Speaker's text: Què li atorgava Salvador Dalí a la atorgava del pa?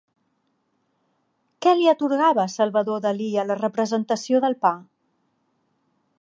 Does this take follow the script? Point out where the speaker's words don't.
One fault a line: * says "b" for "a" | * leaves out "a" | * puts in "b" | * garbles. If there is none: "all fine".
* says "representació" for "atorgava"